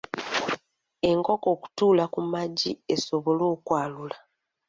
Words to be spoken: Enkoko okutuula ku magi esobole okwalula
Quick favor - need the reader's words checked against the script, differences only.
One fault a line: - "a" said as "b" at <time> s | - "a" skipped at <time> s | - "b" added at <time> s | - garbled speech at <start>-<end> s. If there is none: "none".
none